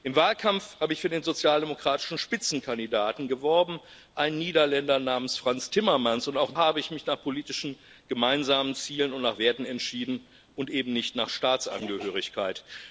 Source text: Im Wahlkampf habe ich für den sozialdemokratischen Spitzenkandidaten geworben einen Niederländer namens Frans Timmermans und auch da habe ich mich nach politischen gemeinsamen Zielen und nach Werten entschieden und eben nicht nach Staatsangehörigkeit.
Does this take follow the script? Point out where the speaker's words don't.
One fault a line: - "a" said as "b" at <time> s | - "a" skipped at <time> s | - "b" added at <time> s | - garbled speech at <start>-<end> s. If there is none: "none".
- "da" skipped at 6.5 s